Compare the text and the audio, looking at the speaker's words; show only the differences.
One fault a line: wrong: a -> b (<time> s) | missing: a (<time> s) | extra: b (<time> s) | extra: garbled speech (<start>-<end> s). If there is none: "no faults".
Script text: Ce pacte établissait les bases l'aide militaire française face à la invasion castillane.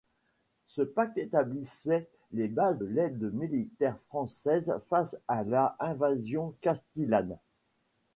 no faults